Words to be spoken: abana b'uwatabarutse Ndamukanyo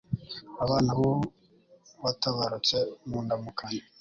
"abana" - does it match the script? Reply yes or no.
yes